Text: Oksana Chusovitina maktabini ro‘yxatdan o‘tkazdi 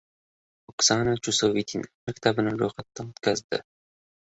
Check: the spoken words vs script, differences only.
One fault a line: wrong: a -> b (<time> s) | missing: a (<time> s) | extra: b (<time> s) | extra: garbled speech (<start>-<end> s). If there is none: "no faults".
no faults